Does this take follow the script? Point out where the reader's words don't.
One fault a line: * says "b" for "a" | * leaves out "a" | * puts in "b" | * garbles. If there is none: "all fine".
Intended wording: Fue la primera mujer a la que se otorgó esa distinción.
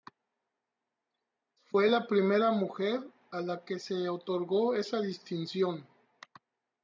all fine